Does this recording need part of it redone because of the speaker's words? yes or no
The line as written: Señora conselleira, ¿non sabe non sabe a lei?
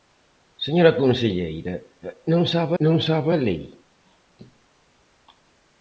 no